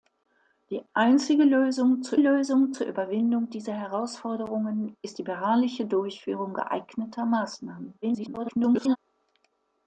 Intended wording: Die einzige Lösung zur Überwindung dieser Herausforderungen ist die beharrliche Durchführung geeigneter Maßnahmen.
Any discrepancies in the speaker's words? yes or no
yes